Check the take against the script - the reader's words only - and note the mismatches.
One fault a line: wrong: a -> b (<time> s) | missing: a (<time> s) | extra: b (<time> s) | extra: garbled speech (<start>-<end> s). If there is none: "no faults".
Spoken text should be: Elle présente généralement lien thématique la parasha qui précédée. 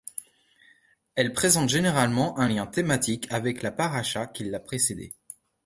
extra: un (2.4 s)
extra: avec (3.3 s)
extra: l'a (4.4 s)